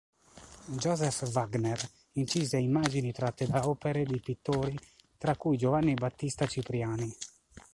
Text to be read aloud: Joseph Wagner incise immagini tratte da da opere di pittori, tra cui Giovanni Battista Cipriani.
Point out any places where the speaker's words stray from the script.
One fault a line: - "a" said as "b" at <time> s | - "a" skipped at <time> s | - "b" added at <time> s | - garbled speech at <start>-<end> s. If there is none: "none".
- "da" skipped at 3.7 s